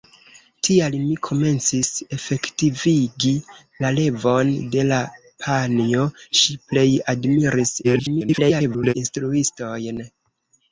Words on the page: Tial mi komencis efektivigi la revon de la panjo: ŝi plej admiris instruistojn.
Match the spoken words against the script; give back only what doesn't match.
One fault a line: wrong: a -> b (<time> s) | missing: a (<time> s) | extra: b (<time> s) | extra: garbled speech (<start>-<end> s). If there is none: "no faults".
extra: garbled speech (7.8-8.9 s)